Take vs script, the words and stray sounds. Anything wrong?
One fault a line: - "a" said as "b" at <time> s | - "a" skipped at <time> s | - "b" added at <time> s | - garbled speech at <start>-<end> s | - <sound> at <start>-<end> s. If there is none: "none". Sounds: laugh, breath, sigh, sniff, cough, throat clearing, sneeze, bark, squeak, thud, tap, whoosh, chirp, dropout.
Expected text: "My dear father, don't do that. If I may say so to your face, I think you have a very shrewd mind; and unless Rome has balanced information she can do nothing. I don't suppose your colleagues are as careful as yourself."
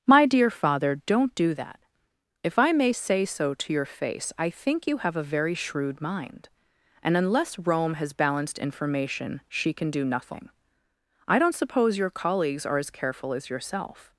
none